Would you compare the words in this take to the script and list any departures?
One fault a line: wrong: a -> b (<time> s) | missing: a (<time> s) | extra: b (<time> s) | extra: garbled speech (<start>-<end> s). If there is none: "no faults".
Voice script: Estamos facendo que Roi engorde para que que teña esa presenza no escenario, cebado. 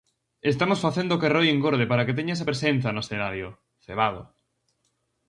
missing: que (2.2 s)